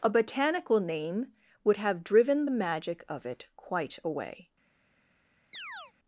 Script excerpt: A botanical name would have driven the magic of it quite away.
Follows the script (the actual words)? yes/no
yes